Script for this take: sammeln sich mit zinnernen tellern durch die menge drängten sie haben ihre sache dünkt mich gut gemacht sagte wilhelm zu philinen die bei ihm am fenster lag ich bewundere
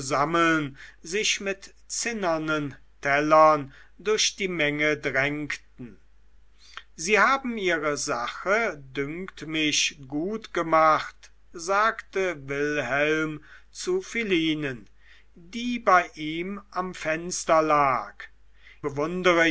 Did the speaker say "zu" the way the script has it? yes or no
yes